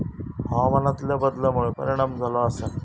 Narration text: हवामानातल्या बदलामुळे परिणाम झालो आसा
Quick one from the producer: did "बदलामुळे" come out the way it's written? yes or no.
yes